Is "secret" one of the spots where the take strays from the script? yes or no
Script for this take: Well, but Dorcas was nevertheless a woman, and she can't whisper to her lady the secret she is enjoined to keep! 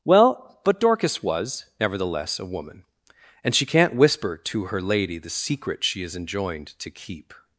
no